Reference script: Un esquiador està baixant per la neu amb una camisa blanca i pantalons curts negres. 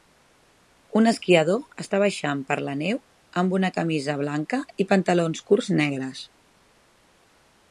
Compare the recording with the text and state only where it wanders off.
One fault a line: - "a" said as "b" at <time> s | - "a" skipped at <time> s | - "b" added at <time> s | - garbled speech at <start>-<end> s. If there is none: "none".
none